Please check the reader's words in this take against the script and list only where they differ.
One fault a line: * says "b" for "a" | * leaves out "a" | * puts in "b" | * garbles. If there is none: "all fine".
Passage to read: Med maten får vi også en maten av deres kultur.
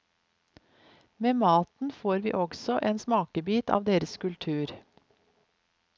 * says "smakebit" for "maten"